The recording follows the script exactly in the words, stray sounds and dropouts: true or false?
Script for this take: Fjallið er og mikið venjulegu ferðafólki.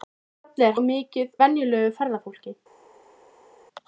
true